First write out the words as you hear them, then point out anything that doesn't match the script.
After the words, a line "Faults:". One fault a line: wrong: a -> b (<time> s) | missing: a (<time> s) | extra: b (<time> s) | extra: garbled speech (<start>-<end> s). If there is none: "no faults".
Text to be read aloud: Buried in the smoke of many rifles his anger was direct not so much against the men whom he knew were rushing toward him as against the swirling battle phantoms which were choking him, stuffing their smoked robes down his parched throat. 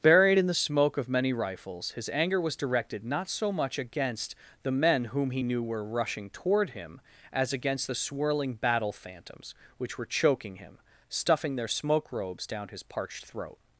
Buried in the smoke of many rifles his anger was directed not so much against the men whom he knew were rushing toward him as against the swirling battle phantoms which were choking him, stuffing their smoke robes down his parched throat.
Faults:
wrong: direct -> directed (2.6 s)
wrong: smoked -> smoke (11.7 s)